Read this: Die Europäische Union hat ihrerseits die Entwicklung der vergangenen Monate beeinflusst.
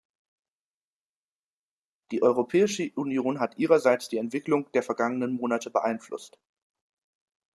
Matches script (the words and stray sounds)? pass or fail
pass